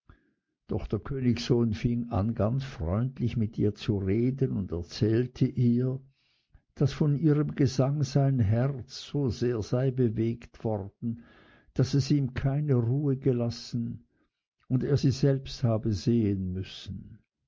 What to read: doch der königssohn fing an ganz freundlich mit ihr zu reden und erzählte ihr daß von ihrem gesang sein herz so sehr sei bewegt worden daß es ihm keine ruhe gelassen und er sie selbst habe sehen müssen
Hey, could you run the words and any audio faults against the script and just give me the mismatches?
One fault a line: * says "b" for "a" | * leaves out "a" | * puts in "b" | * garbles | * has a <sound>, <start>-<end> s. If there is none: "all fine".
all fine